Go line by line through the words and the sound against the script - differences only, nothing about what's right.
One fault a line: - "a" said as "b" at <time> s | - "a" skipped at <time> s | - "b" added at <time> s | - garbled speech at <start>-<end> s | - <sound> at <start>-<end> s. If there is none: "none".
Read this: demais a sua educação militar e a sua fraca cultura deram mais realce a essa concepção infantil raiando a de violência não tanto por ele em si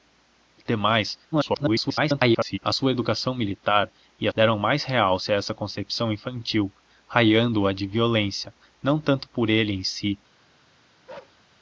- garbled speech at 1.3-2.6 s
- "sua fraca cultura" skipped at 4.3 s
- bark at 11.1-11.4 s